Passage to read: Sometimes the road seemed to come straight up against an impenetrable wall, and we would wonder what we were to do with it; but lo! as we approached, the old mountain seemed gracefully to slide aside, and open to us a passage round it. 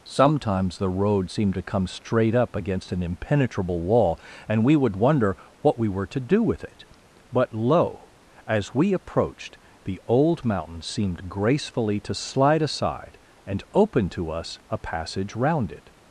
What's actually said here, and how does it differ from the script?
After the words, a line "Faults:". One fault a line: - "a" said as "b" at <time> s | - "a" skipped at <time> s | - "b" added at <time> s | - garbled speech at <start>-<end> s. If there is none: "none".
Sometimes the road seemed to come straight up against an impenetrable wall, and we would wonder what we were to do with it; but lo! as we approached, the old mountain seemed gracefully to slide aside, and open to us a passage round it.
Faults:
none